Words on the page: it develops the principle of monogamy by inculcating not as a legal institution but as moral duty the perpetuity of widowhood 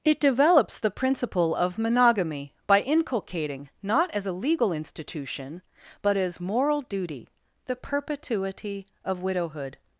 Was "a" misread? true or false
false